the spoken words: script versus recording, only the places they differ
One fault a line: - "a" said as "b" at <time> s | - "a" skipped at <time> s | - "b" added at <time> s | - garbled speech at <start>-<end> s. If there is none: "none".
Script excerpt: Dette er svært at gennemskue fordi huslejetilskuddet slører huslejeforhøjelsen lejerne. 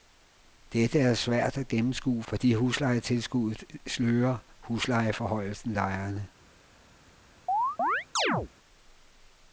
none